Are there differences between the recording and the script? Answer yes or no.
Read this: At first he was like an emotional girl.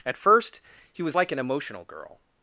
no